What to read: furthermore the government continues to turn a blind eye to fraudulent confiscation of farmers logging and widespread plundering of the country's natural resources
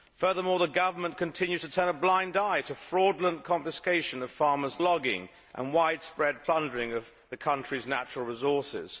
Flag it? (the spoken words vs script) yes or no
no